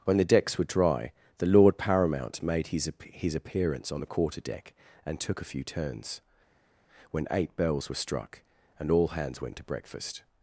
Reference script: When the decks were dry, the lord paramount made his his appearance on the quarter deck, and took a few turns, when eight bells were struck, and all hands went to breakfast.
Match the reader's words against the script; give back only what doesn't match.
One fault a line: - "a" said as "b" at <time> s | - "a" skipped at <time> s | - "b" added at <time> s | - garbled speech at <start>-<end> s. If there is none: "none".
none